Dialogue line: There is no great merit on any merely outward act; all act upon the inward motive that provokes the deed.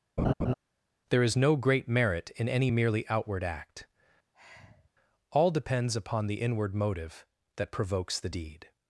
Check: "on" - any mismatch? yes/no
yes